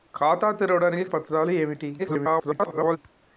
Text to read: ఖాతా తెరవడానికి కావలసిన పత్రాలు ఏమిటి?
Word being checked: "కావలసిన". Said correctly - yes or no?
no